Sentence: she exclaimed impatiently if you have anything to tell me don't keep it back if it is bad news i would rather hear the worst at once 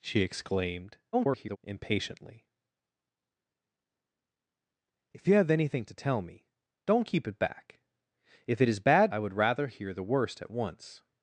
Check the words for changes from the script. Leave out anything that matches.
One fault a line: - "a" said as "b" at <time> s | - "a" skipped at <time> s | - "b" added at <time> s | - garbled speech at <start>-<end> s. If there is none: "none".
- garbled speech at 1.1-1.6 s
- "news" skipped at 9.1 s